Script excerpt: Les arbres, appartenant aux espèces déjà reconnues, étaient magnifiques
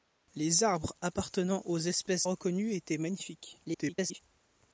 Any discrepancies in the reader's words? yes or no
yes